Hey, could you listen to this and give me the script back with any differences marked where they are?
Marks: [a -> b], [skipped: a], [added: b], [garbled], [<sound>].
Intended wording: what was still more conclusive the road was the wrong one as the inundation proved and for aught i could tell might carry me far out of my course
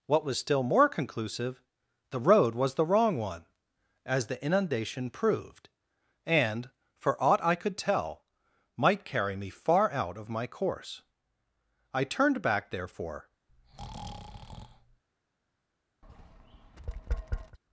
what was still more conclusive the road was the wrong one as the inundation proved and for aught i could tell might carry me far out of my course [added: i turned back therefore] [breath] [tap]